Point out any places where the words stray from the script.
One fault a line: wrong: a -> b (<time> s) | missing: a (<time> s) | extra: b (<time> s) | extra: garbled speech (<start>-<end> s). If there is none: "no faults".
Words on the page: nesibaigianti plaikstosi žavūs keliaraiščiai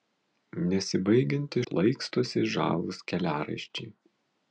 no faults